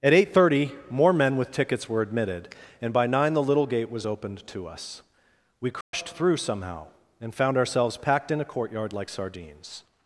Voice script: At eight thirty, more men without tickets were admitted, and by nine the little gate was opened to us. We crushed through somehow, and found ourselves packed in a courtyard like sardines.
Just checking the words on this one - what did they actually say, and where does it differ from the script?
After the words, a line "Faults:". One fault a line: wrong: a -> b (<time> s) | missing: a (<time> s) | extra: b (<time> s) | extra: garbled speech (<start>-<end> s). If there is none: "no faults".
At eight thirty, more men with tickets were admitted, and by nine the little gate was opened to us. We crushed through somehow, and found ourselves packed in a courtyard like sardines.
Faults:
wrong: without -> with (1.4 s)